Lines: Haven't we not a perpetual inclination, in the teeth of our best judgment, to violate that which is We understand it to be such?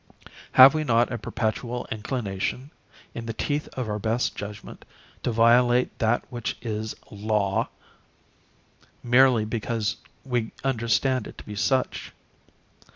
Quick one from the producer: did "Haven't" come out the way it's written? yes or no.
no